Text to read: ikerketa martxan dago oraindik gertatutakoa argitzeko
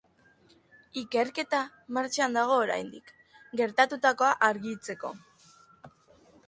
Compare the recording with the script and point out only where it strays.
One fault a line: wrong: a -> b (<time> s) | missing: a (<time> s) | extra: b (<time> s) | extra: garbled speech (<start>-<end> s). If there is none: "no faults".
no faults